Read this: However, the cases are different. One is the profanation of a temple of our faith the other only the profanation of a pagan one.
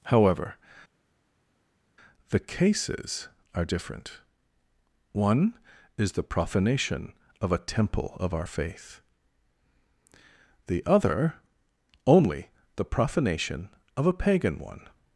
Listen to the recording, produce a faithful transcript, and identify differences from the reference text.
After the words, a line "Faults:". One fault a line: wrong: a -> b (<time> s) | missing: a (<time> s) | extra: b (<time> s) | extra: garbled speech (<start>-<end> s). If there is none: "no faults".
However, the cases are different. One is the profanation of a temple of our faith the other only the profanation of a pagan one.
Faults:
no faults